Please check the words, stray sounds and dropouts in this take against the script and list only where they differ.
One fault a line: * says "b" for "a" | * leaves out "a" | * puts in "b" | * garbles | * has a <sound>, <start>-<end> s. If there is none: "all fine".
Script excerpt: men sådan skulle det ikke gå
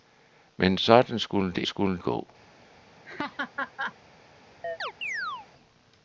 * says "skulle" for "ikke"
* has a laugh, 3.1-4.0 s
* has a chirp, 4.6-5.5 s